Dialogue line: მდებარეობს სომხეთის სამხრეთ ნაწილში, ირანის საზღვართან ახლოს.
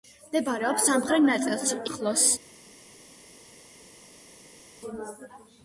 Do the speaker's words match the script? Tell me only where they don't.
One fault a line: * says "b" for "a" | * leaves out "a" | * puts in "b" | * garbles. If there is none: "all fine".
* leaves out "სომხეთის"
* leaves out "ირანის საზღვართან"